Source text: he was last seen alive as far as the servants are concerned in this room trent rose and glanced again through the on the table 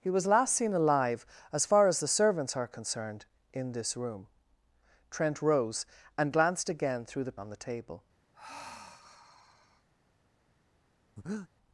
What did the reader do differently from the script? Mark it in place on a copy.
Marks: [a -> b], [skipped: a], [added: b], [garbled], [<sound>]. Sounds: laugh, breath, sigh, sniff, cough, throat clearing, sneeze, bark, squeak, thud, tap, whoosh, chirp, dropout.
he was last seen alive as far as the servants are concerned in this room trent rose and glanced again through the on the table [sigh] [breath]